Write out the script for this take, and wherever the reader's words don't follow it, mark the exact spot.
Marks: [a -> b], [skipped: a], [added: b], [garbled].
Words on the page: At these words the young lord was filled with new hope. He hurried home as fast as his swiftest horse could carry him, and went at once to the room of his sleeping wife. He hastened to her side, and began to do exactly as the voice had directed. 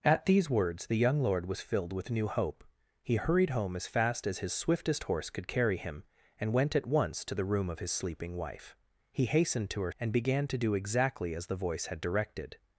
At these words the young lord was filled with new hope. He hurried home as fast as his swiftest horse could carry him, and went at once to the room of his sleeping wife. He hastened to her [skipped: side,] and began to do exactly as the voice had directed.